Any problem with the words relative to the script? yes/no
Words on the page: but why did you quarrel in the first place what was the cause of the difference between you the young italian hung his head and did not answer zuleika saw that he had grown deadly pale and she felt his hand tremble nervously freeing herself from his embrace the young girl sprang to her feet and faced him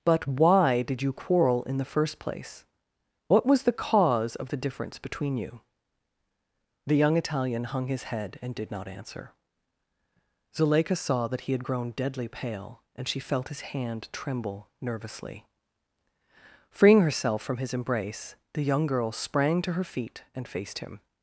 no